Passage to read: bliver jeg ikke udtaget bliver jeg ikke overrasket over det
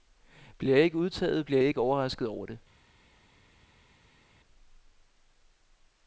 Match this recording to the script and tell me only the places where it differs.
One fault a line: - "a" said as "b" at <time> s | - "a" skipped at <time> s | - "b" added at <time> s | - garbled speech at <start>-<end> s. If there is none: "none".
none